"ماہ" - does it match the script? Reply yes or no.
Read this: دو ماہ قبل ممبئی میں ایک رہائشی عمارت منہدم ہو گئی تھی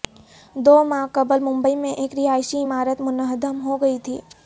yes